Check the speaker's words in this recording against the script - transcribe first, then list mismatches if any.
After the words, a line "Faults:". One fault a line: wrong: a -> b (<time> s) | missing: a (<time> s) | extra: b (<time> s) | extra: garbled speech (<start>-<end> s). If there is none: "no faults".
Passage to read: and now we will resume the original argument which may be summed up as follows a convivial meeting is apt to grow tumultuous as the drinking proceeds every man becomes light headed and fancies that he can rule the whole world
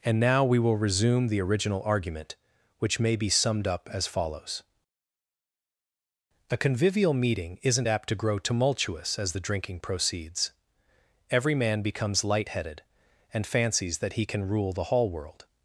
and now we will resume the original argument which may be summed up as follows a convivial meeting isn't apt to grow tumultuous as the drinking proceeds every man becomes light headed and fancies that he can rule the hall world
Faults:
wrong: is -> isn't (7.6 s)
wrong: whole -> hall (14.8 s)